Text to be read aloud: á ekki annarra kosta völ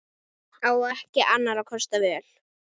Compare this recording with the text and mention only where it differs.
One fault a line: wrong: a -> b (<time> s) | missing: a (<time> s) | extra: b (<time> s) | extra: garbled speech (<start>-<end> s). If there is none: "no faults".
no faults